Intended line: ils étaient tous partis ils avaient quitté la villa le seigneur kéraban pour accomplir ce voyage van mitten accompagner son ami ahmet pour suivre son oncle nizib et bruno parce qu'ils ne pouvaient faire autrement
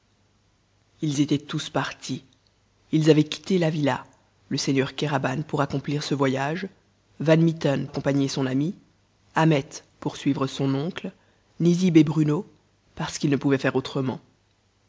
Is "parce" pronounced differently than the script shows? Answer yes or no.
no